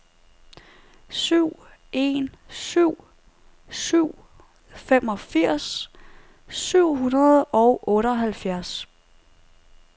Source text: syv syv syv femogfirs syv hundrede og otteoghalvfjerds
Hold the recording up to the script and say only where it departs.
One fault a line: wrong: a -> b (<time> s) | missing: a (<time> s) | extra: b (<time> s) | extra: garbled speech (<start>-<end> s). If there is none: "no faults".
extra: en (1.9 s)